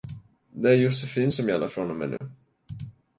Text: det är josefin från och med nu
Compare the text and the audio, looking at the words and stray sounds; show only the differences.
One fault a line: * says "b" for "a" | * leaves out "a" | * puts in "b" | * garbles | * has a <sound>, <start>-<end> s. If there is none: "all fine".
* puts in "som gäller"
* has a dropout, 2.2-2.2 s